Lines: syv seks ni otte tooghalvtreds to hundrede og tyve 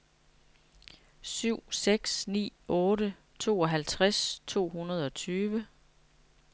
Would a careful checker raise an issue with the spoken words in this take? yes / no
no